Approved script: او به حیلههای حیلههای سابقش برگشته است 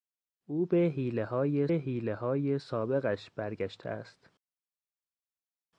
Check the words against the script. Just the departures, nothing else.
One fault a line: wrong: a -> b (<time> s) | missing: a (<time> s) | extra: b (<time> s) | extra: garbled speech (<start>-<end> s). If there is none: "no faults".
no faults